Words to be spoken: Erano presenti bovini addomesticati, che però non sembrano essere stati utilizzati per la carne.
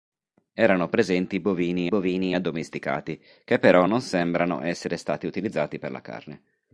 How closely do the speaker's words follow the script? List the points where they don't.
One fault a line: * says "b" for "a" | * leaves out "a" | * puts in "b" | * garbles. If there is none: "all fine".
* puts in "bovini"